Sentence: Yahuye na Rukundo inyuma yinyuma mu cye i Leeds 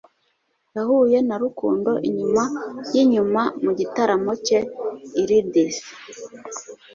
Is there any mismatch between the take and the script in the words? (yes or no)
yes